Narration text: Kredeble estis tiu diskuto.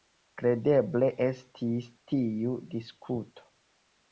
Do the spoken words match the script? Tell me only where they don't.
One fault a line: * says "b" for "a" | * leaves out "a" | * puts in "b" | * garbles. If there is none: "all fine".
all fine